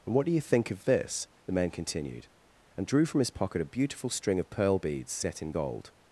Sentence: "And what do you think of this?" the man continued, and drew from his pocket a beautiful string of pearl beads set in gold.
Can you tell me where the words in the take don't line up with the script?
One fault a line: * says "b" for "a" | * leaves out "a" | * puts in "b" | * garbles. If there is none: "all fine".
all fine